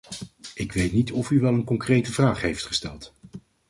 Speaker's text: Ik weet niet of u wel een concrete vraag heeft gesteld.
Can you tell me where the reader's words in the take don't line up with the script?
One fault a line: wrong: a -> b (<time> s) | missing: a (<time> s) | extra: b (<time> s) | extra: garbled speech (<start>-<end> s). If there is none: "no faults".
no faults